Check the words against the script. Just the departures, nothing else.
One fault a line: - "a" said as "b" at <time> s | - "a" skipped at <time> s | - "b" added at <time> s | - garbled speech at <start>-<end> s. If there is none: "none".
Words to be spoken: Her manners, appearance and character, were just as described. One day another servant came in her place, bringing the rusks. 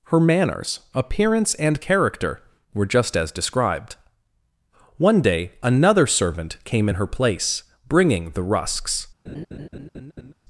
none